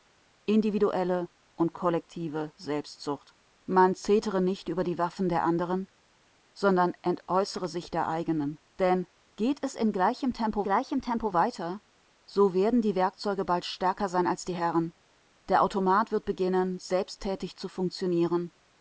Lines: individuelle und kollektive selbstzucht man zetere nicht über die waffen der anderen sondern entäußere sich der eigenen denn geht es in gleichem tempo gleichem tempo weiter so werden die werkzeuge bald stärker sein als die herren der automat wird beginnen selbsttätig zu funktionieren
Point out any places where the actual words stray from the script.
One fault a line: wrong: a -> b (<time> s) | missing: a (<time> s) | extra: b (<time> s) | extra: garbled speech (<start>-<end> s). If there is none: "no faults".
no faults